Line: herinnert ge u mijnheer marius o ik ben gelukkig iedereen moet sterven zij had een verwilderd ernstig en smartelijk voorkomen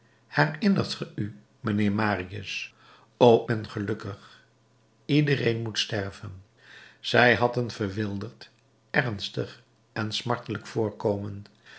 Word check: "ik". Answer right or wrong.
wrong